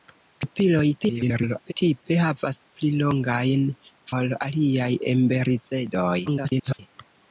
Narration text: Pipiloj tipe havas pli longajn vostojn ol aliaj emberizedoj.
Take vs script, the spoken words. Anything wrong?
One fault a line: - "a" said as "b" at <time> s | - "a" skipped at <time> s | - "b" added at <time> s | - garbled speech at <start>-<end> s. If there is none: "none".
- garbled speech at 1.0-1.7 s
- "vostojn" skipped at 3.6 s
- garbled speech at 6.3-6.8 s